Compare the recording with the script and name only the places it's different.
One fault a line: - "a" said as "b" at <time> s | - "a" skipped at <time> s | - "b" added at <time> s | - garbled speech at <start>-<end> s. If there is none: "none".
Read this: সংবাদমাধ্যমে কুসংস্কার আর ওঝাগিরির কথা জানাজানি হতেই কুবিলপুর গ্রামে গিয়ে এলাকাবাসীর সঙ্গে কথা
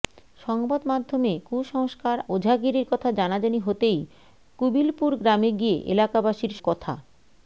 - "আর" skipped at 2.2 s
- "সঙ্গে" skipped at 6.5 s